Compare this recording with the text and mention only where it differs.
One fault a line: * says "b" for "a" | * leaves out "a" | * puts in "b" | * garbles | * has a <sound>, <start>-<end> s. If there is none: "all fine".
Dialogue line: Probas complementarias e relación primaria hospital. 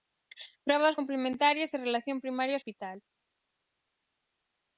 all fine